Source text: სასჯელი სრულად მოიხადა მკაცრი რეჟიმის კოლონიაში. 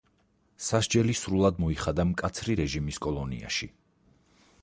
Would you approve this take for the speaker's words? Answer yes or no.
yes